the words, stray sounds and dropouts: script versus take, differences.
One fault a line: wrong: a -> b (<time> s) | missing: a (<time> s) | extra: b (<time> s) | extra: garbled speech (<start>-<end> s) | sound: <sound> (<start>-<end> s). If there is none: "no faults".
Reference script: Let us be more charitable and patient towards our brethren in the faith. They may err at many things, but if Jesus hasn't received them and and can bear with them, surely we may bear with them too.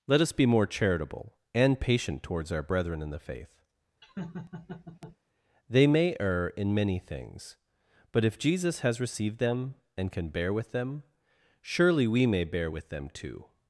sound: laugh (4.0-5.2 s)
wrong: at -> in (6.5 s)
wrong: hasn't -> has (8.8 s)
missing: and (10.1 s)